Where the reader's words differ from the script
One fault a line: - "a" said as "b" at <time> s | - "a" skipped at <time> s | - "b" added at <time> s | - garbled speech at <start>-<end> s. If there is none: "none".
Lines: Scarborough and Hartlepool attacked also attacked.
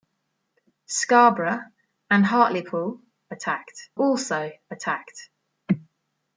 none